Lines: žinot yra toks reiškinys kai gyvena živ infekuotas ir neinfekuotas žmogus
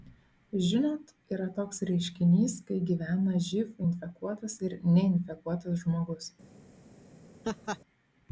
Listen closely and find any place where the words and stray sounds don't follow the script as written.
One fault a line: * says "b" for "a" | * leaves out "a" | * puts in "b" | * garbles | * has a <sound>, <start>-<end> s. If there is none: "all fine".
* has a laugh, 7.4-7.8 s